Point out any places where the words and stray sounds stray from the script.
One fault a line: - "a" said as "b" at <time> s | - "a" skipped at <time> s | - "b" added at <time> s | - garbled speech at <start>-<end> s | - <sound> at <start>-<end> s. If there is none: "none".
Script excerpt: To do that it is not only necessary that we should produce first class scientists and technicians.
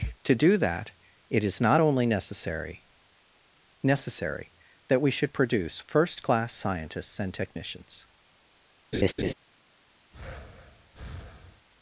- "necessary" added at 3.8 s
- laugh at 8.9-9.3 s
- breath at 10.1-11.7 s